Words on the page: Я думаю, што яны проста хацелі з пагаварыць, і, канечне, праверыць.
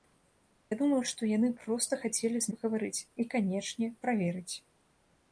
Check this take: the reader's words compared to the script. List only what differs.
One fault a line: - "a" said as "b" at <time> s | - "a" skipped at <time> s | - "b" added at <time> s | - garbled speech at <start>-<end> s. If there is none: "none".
none